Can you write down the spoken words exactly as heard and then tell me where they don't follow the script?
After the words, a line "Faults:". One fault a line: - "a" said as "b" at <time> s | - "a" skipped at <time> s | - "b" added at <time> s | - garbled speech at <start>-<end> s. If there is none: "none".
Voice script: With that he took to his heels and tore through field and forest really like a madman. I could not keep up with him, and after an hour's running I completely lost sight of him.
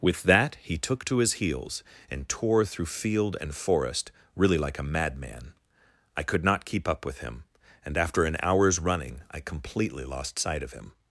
With that he took to his heels and tore through field and forest really like a madman. I could not keep up with him, and after an hour's running I completely lost sight of him.
Faults:
none